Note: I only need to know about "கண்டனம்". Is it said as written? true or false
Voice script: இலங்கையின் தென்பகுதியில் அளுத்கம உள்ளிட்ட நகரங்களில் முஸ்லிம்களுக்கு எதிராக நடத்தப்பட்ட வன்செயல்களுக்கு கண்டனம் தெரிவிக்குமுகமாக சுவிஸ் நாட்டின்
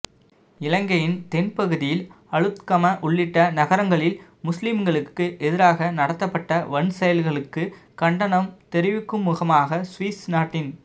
true